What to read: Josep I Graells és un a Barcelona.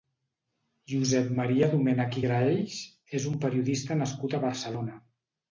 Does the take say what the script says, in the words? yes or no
no